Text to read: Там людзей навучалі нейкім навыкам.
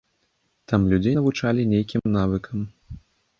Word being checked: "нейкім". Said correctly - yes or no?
yes